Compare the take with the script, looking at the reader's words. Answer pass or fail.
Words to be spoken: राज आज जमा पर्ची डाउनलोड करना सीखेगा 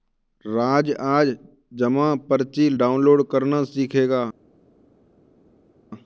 pass